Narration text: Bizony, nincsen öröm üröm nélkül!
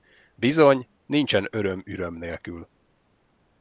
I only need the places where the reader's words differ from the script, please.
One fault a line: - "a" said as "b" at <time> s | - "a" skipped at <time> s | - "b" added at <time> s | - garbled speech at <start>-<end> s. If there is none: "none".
none